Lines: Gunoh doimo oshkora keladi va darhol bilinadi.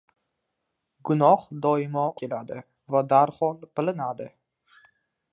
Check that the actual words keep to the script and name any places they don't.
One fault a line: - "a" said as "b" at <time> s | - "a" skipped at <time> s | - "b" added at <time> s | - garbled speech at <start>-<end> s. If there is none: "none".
- "oshkora" skipped at 2.0 s